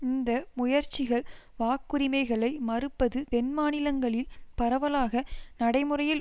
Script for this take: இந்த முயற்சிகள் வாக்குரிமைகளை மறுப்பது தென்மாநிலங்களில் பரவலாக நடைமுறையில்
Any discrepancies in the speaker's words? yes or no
no